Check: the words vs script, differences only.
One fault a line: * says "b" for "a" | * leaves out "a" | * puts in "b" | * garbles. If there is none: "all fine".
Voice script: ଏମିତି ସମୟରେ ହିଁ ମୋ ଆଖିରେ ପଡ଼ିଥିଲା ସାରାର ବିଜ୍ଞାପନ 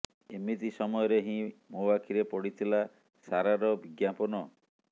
all fine